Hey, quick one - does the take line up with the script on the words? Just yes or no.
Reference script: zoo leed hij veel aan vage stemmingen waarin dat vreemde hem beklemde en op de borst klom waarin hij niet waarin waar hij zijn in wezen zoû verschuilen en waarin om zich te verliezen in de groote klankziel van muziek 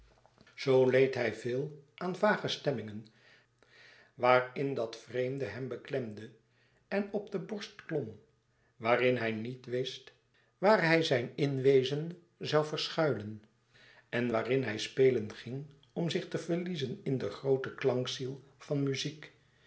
no